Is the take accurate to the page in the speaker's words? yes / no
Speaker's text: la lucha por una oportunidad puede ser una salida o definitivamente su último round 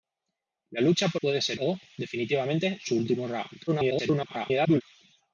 no